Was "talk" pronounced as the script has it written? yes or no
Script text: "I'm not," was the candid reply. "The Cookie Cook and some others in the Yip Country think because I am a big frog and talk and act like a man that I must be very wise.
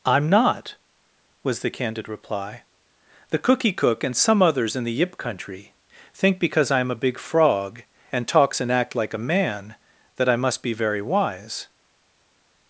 no